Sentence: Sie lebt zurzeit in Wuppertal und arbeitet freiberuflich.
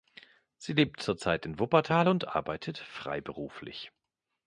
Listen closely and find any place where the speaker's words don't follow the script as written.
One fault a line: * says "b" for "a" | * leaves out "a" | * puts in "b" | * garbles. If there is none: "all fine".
all fine